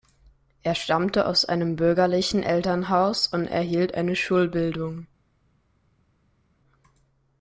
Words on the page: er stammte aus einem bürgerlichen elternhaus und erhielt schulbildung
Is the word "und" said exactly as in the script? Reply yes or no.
yes